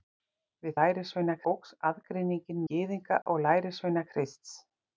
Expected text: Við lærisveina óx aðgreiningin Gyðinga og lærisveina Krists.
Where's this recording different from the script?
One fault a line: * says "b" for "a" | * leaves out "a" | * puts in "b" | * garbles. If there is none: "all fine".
all fine